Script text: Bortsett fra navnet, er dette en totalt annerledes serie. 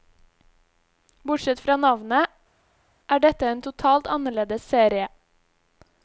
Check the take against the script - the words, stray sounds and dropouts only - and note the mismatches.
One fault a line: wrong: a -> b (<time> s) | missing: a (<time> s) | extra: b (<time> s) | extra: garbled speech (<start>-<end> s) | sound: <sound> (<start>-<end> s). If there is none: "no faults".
no faults